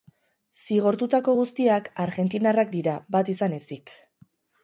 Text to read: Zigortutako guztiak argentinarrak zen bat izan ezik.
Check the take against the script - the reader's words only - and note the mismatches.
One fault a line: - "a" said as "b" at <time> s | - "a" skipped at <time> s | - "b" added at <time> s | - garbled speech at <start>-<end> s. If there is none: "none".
- "zen" said as "dira" at 2.8 s